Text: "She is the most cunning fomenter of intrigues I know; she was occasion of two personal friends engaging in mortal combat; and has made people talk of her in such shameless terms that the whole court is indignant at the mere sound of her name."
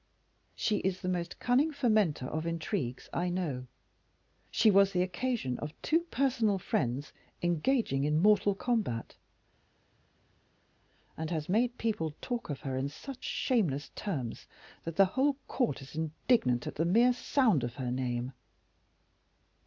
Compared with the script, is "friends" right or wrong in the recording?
right